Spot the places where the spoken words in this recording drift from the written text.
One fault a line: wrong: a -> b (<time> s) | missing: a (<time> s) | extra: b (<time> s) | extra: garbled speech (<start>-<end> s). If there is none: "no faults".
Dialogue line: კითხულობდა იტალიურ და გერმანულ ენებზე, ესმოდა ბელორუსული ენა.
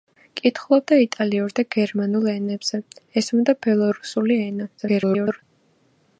extra: garbled speech (4.8-5.4 s)